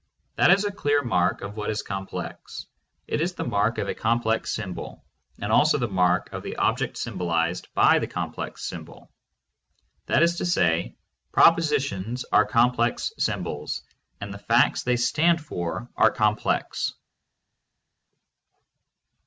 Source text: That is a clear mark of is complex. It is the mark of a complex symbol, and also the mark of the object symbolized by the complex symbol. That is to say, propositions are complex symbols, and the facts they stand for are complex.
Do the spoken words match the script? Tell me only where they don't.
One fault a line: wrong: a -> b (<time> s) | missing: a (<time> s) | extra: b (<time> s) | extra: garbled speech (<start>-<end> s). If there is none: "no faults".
extra: what (1.6 s)